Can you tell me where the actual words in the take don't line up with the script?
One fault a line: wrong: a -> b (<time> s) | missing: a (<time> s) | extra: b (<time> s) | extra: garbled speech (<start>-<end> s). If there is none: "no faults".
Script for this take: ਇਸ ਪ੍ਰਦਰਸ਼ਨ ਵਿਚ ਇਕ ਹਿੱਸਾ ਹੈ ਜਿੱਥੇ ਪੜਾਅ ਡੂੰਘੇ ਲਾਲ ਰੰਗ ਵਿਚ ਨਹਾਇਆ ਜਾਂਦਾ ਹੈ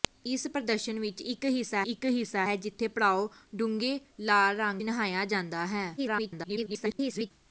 extra: ਇਕ ਹਿੱਸਾ (1.8 s)
missing: ਵਿਚ (4.8 s)
extra: garbled speech (6.0-7.3 s)